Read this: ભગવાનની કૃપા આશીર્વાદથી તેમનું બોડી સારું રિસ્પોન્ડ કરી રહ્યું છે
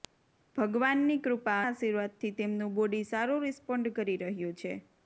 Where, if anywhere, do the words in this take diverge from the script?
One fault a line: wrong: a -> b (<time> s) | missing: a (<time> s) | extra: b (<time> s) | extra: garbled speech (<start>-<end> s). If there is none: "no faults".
no faults